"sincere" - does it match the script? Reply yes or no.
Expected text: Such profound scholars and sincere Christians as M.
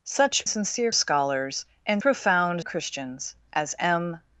no